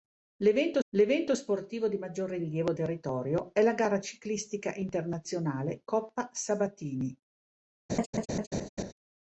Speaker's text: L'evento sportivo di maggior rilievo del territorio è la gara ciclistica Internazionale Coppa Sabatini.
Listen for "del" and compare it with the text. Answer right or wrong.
wrong